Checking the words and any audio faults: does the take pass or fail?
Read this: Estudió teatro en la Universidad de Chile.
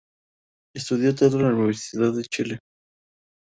pass